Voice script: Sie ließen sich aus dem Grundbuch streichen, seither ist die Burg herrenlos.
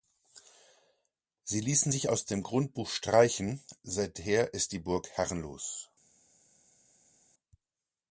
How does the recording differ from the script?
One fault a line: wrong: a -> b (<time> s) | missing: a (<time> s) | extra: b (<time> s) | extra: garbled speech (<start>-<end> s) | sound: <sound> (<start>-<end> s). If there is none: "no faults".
no faults